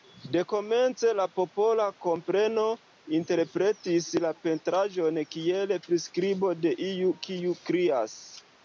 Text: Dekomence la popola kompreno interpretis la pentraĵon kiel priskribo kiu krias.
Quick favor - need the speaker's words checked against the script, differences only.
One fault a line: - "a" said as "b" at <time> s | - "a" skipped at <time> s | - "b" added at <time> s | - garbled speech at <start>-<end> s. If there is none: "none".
- "de iu" added at 6.6 s